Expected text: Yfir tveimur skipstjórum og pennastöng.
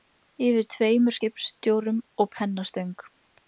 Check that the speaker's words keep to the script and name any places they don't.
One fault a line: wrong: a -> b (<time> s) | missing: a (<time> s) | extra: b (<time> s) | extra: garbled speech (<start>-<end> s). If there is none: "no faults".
no faults